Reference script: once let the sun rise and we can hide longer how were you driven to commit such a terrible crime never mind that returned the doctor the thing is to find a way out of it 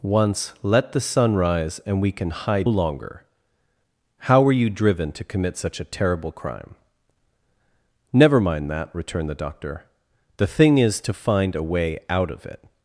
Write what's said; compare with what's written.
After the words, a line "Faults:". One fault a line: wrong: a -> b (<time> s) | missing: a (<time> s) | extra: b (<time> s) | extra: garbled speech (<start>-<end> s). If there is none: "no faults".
once let the sun rise and we can hide longer how were you driven to commit such a terrible crime never mind that returned the doctor the thing is to find a way out of it
Faults:
no faults